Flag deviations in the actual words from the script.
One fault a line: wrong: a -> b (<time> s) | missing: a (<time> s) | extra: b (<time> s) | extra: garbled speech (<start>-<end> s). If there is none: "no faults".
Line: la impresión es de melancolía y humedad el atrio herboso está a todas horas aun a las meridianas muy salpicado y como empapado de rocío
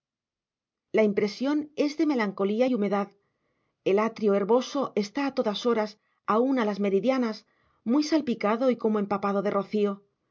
no faults